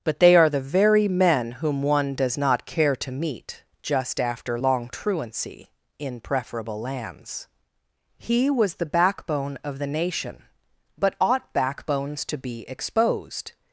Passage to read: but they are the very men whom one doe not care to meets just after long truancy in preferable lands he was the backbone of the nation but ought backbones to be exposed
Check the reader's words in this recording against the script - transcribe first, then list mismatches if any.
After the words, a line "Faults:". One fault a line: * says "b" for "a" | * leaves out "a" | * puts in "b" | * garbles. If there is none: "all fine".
but they are the very men whom one does not care to meet just after long truancy in preferable lands he was the backbone of the nation but ought backbones to be exposed
Faults:
* says "does" for "doe"
* says "meet" for "meets"